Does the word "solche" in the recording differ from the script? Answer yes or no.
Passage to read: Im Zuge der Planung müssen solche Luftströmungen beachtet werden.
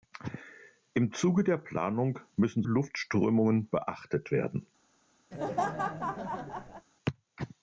yes